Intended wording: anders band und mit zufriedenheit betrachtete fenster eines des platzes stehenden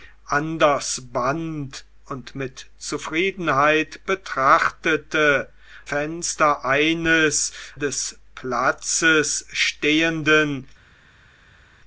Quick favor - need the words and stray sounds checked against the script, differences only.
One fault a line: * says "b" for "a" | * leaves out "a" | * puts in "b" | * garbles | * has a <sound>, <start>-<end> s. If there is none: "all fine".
all fine